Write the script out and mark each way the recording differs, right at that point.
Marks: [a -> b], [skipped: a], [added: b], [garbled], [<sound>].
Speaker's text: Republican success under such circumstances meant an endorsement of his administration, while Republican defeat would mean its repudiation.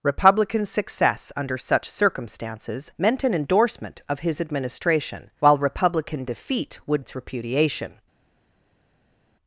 Republican success under such circumstances meant an endorsement of his administration, while Republican defeat would [skipped: mean] its repudiation.